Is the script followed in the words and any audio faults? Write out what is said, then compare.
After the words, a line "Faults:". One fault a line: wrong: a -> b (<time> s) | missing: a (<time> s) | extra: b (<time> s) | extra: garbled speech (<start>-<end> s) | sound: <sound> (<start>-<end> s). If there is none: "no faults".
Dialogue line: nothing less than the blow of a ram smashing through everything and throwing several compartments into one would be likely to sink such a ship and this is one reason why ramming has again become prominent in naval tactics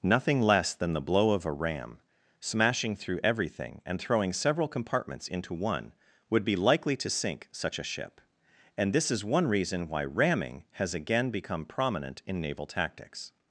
nothing less than the blow of a ram smashing through everything and throwing several compartments into one would be likely to sink such a ship and this is one reason why ramming has again become prominent in naval tactics
Faults:
no faults